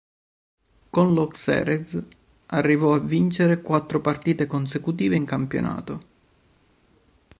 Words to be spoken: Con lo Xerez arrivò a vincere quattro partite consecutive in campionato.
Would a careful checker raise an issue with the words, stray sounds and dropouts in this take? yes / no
no